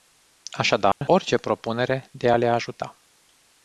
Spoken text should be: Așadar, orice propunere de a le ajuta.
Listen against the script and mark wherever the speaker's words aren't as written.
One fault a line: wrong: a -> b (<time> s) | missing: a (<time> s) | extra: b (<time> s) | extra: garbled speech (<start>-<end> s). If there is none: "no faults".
no faults